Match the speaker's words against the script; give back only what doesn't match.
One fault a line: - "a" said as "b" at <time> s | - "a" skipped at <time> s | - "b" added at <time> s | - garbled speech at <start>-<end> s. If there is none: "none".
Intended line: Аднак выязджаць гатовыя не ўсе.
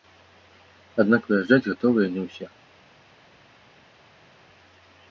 none